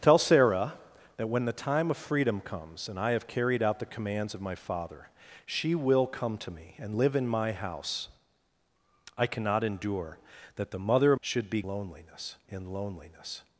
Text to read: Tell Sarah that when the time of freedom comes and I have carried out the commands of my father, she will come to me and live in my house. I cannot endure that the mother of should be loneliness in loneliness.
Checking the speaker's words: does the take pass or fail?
pass